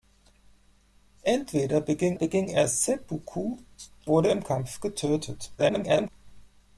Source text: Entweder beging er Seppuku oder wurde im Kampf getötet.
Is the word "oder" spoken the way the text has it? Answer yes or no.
no